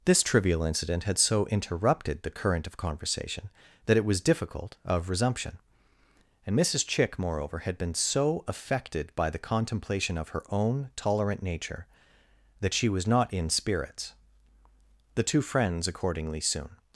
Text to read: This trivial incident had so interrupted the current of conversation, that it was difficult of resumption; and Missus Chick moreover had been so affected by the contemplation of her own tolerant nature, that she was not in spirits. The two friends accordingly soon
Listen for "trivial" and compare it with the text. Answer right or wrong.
right